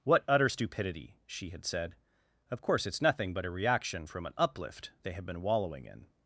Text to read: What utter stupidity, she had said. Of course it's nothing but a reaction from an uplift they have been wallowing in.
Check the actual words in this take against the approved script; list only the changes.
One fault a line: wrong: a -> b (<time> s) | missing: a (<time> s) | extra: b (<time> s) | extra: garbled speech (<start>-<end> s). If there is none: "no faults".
no faults